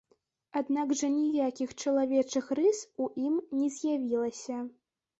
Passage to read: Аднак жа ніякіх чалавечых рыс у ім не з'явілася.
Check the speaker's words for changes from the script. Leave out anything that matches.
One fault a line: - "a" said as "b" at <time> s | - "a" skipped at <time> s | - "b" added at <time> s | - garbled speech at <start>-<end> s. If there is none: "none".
none